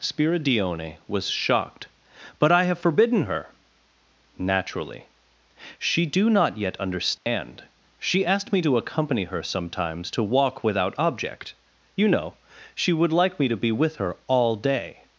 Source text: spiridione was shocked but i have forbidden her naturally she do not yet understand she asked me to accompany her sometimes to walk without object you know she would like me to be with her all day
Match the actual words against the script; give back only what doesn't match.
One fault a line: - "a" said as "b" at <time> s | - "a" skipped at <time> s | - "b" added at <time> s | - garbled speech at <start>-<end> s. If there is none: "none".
none